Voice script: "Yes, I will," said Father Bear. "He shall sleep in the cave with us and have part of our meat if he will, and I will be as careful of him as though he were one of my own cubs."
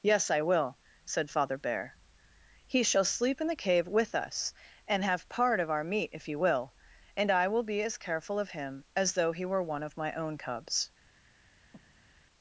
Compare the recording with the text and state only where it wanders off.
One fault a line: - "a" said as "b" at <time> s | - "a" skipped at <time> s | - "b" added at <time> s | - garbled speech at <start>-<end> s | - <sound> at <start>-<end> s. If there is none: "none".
- breath at 11.7-12.2 s